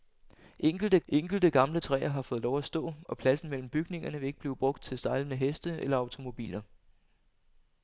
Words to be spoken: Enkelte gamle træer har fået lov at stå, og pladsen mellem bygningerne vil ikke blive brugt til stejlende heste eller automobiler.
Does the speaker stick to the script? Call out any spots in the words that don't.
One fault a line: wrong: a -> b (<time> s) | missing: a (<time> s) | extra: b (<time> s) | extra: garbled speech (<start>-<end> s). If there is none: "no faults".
extra: enkelte (1.1 s)